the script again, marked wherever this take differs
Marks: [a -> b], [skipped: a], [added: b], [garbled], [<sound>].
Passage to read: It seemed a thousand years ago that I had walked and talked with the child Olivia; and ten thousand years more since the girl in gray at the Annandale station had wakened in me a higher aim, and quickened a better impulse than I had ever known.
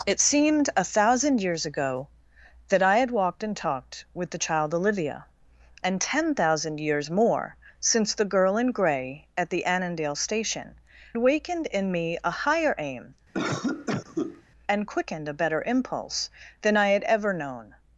It seemed a thousand years ago that I had walked and talked with the child Olivia; and ten thousand years more since the girl in gray at the Annandale station [skipped: had] wakened in me a higher aim, [cough] and quickened a better impulse than I had ever known.